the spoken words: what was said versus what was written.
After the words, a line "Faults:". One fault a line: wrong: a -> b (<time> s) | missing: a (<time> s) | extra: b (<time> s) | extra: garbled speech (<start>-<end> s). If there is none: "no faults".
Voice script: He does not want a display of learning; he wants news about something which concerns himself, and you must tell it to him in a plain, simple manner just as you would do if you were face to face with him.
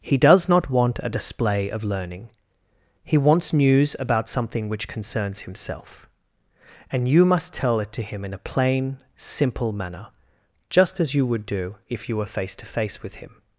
He does not want a display of learning; he wants news about something which concerns himself, and you must tell it to him in a plain, simple manner just as you would do if you were face to face with him.
Faults:
no faults